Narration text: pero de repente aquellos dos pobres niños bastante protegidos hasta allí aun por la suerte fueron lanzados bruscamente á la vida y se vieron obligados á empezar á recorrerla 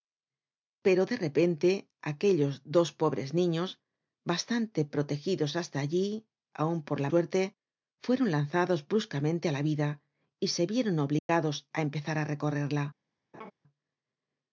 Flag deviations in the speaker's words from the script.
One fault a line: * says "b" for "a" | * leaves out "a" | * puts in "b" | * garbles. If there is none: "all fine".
all fine